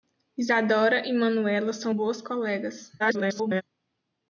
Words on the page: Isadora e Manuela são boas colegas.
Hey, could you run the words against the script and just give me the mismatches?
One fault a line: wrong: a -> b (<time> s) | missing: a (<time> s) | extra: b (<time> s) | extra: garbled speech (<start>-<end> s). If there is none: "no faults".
extra: garbled speech (3.0-3.6 s)